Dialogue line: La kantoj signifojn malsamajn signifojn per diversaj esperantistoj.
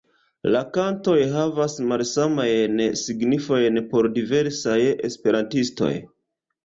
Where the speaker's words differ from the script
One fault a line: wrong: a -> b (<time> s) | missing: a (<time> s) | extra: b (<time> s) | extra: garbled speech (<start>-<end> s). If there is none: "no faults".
wrong: signifojn -> havas (1.3 s)
wrong: per -> por (3.9 s)